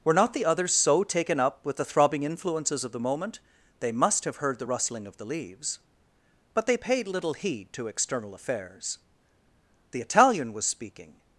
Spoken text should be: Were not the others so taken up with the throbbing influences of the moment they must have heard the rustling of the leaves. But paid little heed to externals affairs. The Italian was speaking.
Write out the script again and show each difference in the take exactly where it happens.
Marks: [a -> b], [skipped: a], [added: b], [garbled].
Were not the others so taken up with the throbbing influences of the moment they must have heard the rustling of the leaves. But [added: they] paid little heed to [externals -> external] affairs. The Italian was speaking.